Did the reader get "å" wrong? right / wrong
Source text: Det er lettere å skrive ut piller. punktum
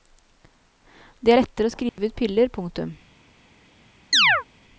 right